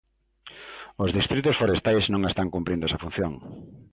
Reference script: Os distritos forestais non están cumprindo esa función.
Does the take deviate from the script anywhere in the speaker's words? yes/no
no